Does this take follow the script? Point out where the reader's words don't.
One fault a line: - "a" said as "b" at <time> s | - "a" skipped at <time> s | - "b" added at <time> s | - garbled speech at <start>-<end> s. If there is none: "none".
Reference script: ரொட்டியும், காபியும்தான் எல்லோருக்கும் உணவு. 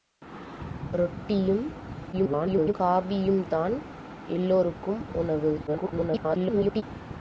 - garbled speech at 2.1-2.7 s
- garbled speech at 5.7-6.8 s